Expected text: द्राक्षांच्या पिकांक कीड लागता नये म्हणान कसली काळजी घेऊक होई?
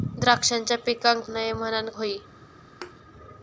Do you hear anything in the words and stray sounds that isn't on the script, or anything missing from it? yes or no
yes